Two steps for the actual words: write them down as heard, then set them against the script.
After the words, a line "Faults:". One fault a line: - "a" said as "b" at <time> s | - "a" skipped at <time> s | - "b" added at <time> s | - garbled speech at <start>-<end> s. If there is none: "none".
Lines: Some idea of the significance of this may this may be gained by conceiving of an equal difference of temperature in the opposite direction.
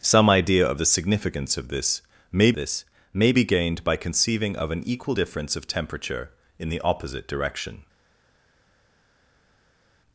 Some idea of the significance of this may this may be gained by conceiving of an equal difference of temperature in the opposite direction.
Faults:
none